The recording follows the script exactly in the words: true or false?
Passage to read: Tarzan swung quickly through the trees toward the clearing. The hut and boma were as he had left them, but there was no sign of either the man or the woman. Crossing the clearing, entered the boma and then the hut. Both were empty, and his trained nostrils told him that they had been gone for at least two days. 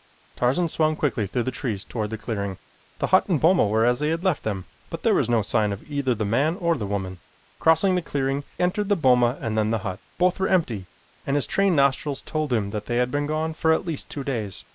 true